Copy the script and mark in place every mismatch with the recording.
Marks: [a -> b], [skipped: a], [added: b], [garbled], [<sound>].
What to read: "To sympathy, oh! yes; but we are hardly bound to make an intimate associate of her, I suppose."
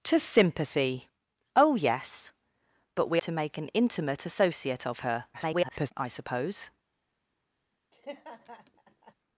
"To sympathy, oh! yes; but we [skipped: are hardly bound] to make an intimate associate of her, [garbled] I suppose." [laugh]